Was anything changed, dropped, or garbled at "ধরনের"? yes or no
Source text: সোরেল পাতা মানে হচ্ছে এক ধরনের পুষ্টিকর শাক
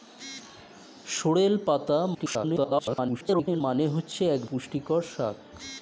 yes